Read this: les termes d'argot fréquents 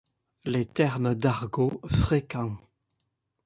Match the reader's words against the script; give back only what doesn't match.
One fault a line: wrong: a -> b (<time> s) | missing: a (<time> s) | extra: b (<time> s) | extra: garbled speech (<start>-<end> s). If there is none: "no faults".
no faults